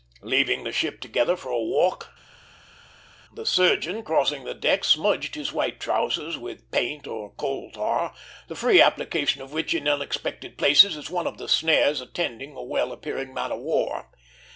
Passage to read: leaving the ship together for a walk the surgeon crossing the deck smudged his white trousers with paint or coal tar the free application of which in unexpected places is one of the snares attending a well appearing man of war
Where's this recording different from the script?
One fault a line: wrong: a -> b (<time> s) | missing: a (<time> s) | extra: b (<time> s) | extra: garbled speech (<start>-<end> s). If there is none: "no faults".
no faults